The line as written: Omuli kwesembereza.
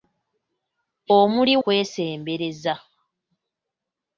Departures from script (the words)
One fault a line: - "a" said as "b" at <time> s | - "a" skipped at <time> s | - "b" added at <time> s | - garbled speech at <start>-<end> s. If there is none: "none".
none